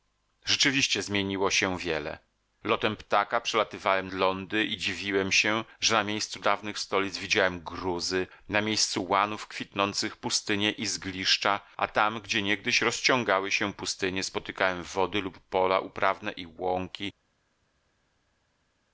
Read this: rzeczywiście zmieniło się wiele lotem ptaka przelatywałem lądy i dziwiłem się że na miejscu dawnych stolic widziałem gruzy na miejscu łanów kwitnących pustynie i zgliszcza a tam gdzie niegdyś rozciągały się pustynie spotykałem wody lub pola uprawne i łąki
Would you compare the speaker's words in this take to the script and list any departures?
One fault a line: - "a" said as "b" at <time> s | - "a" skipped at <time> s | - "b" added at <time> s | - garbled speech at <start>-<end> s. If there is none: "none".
none